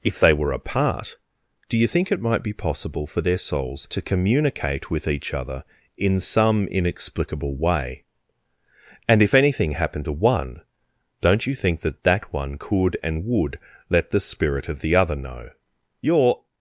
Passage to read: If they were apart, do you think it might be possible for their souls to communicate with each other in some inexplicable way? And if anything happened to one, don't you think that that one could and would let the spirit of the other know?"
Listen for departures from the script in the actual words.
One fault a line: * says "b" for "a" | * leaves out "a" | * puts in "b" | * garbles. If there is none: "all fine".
* puts in "You're"